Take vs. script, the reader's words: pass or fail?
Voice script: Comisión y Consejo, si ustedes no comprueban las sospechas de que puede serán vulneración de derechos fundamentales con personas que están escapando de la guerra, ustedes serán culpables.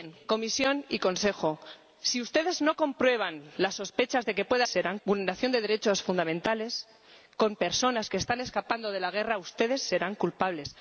pass